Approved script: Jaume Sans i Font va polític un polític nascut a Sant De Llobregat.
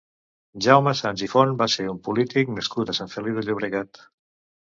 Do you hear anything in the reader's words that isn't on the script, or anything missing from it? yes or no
yes